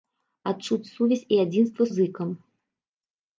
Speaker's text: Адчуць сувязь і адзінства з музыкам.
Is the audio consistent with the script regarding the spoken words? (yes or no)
no